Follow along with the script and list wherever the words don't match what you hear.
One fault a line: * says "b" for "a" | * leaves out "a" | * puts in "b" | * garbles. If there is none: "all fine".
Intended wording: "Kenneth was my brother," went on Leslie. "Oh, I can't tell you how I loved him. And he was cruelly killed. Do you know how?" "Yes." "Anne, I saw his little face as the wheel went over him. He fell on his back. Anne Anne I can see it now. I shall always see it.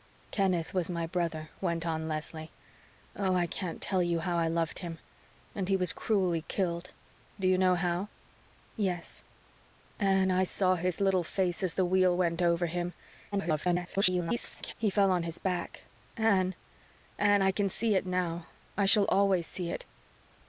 * garbles